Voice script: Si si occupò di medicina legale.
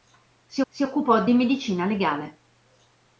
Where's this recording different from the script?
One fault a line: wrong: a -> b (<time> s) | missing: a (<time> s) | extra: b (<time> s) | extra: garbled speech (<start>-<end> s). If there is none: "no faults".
no faults